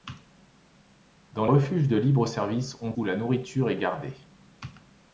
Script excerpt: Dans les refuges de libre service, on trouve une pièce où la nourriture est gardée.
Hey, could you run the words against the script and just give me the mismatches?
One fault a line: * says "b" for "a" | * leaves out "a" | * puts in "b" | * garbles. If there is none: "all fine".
* leaves out "les"
* leaves out "trouve une pièce"